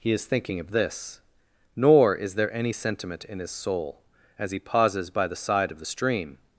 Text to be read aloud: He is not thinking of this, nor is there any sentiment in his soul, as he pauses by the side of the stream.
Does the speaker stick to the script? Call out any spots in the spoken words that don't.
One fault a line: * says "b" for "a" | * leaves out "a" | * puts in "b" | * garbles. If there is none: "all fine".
* leaves out "not"